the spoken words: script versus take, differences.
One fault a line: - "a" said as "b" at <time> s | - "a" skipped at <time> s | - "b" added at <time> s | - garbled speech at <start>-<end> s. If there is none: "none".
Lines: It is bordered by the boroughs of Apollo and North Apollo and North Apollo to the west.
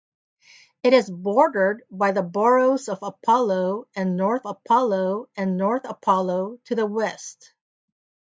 none